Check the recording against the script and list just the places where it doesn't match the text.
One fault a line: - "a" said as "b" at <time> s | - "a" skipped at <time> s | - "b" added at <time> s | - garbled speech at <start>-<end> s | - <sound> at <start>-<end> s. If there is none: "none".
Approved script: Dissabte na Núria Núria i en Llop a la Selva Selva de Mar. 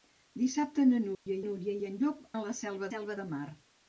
- dropout at 1.1-1.3 s